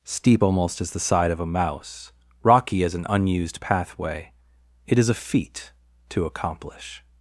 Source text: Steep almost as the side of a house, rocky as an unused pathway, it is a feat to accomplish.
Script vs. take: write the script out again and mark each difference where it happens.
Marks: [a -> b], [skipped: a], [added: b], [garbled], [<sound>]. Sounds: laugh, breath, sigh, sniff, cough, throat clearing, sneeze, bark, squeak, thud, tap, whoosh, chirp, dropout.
Steep almost as the side of a [house, -> mouse] rocky as an unused pathway, it is a feat to accomplish.